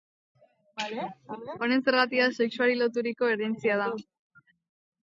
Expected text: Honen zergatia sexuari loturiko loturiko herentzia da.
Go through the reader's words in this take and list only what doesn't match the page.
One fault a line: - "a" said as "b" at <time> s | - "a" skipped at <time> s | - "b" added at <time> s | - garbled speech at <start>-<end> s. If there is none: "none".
- "loturiko" skipped at 3.3 s